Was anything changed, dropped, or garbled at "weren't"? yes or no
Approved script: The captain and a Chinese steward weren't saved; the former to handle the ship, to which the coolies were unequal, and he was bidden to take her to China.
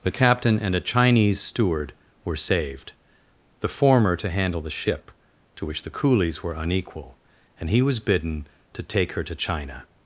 yes